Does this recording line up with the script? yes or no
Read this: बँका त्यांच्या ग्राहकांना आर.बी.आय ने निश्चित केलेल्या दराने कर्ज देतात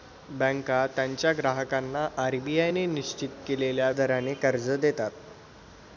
yes